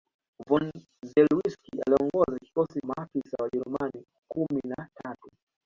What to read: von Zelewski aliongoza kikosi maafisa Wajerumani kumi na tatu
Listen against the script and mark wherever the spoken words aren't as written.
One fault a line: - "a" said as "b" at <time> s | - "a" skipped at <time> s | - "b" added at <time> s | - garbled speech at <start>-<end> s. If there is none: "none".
none